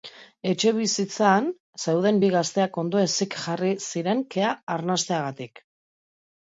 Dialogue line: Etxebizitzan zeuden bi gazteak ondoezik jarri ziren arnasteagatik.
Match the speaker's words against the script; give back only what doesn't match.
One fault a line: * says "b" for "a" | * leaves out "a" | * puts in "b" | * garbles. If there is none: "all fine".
* puts in "kea"